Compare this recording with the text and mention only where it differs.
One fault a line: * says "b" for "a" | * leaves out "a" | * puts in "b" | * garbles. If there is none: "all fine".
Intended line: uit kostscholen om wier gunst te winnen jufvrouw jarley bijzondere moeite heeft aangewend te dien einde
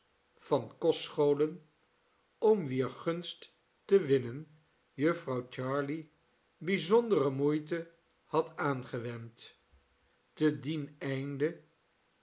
* says "van" for "uit"
* says "had" for "heeft"